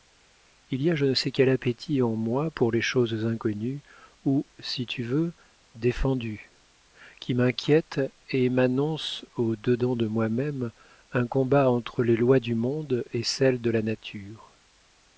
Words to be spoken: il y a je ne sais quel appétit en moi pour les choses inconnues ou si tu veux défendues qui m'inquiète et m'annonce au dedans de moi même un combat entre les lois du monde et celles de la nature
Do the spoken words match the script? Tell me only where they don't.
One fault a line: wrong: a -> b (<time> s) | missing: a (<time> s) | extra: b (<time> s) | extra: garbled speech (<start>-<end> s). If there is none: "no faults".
no faults